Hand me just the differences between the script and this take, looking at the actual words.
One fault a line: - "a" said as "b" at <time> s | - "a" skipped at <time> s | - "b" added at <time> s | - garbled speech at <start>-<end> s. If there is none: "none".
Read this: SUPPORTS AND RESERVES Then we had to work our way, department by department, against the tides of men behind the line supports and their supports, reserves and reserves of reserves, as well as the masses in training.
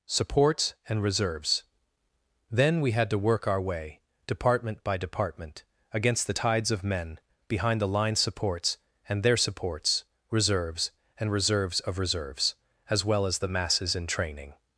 none